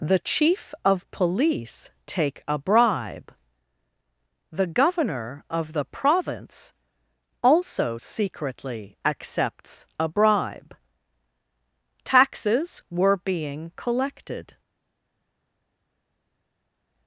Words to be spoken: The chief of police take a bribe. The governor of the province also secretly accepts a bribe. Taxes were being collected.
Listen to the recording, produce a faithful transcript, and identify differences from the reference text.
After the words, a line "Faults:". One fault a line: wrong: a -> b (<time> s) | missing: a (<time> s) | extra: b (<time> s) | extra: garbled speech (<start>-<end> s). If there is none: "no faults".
The chief of police take a bribe. The governor of the province also secretly accepts a bribe. Taxes were being collected.
Faults:
no faults